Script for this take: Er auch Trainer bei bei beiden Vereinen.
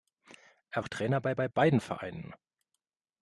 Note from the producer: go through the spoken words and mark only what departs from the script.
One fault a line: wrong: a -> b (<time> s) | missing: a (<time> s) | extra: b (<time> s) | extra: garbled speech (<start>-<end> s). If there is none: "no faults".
no faults